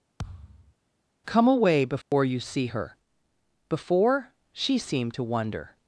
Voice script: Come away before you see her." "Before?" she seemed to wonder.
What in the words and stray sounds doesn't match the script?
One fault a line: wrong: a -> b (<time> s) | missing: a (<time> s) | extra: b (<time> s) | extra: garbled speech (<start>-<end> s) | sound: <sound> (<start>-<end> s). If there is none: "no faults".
sound: thud (0.2-0.7 s)
sound: dropout (2.0-2.1 s)